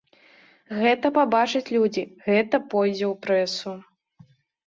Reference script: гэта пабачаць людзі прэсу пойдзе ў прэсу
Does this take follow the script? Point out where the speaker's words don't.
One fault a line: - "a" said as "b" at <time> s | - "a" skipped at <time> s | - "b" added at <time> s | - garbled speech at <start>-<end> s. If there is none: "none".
- "прэсу" said as "гэта" at 2.3 s